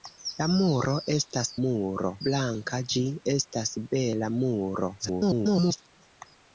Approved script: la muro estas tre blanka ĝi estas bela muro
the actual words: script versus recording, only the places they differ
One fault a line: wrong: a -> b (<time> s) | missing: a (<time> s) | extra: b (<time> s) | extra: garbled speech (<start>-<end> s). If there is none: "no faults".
wrong: tre -> muro (1.6 s)
extra: garbled speech (5.0-5.9 s)